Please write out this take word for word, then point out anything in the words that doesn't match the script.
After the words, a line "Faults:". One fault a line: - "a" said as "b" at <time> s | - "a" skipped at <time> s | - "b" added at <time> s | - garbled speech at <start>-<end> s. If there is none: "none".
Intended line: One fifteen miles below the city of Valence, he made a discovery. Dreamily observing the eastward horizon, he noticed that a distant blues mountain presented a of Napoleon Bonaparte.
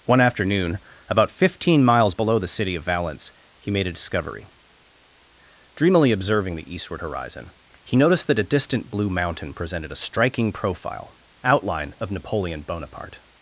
One afternoon, about fifteen miles below the city of Valence, he made a discovery. Dreamily observing the eastward horizon, he noticed that a distant blue mountain presented a striking profile outline of Napoleon Bonaparte.
Faults:
- "afternoon about" added at 0.2 s
- "blues" said as "blue" at 8.9 s
- "striking profile outline" added at 10.0 s